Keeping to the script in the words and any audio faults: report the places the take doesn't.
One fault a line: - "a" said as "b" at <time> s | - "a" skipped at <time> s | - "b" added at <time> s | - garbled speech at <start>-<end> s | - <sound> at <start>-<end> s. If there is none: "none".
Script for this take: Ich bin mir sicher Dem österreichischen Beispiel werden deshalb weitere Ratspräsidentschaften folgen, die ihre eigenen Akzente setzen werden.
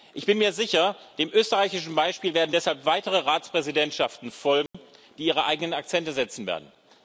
- dropout at 4.7-4.7 s